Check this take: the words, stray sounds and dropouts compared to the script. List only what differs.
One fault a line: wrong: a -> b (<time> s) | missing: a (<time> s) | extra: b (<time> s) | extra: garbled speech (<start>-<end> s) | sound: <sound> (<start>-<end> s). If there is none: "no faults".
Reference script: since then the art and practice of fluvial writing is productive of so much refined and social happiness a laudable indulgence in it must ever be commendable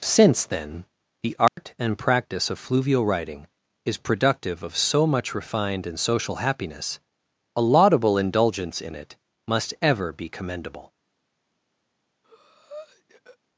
sound: dropout (1.5-1.6 s)
sound: breath (12.2-13.4 s)